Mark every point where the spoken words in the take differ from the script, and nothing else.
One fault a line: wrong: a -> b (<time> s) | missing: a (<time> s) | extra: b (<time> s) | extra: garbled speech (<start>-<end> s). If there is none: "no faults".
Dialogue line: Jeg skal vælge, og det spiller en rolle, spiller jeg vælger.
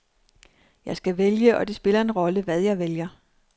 wrong: spiller -> hvad (2.4 s)